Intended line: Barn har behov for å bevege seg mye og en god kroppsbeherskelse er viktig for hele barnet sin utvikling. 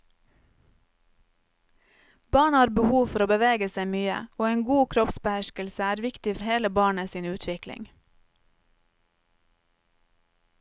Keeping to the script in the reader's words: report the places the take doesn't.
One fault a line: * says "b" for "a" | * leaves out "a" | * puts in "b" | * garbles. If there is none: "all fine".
* leaves out "for"